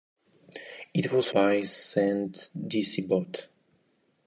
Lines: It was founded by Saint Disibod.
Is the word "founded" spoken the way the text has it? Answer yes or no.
no